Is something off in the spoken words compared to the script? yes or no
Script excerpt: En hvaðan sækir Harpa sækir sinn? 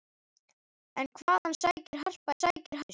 no